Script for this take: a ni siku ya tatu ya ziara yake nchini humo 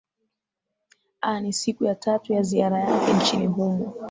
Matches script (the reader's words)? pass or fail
pass